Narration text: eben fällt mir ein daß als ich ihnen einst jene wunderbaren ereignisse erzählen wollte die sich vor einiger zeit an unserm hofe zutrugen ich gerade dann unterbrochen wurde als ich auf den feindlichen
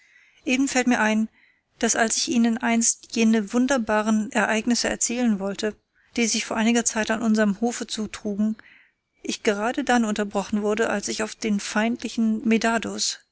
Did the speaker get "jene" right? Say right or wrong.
right